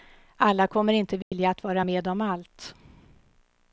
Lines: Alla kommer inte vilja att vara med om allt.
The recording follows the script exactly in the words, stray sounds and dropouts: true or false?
false